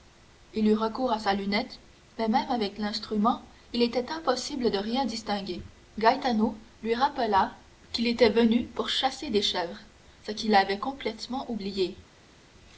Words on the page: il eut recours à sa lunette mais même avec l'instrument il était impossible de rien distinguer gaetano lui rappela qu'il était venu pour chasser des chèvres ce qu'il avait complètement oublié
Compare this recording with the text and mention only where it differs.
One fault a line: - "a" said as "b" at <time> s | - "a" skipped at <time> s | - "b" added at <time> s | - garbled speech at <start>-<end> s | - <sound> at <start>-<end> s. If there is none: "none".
none